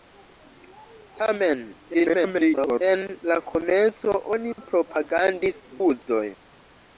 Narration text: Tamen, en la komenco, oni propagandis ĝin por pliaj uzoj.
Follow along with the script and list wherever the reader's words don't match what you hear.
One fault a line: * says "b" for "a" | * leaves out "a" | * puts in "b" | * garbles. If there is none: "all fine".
* garbles
* leaves out "ĝin por pliaj"